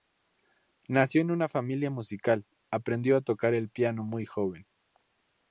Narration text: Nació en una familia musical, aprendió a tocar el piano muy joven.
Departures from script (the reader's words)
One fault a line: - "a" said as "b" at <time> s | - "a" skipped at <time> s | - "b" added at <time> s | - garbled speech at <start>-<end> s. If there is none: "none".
none